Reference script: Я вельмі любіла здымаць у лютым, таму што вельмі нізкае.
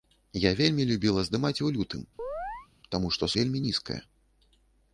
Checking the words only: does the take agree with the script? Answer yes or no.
yes